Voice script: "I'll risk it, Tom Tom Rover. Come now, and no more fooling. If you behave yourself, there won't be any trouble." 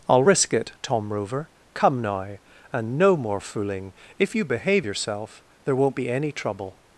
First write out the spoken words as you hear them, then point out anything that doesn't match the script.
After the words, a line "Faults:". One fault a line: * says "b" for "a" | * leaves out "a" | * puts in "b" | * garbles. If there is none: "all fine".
"I'll risk it, Tom Rover. Come now, and no more fooling. If you behave yourself, there won't be any trouble."
Faults:
* leaves out "Tom"